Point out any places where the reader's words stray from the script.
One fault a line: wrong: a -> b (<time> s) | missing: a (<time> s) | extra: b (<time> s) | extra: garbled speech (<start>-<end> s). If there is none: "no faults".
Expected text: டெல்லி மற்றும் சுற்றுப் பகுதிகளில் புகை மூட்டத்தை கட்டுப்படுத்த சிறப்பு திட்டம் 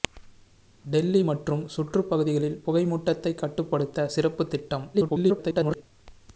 extra: garbled speech (4.9-5.8 s)